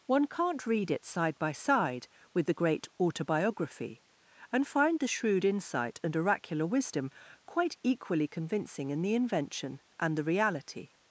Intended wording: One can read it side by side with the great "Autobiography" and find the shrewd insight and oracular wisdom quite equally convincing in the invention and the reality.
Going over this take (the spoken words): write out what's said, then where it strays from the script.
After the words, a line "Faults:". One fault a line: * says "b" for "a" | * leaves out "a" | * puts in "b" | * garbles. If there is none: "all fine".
One can't read it side by side with the great "Autobiography" and find the shrewd insight and oracular wisdom quite equally convincing in the invention and the reality.
Faults:
* says "can't" for "can"